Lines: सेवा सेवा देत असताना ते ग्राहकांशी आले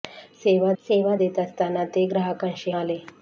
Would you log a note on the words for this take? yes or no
no